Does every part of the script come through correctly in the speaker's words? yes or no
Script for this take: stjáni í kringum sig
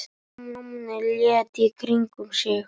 no